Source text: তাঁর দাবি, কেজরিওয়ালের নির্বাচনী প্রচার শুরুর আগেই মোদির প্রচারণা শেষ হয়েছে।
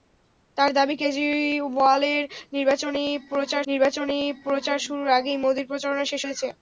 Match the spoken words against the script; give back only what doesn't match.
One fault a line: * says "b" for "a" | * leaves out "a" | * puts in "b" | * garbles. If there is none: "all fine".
* puts in "নির্বাচনী প্রচার"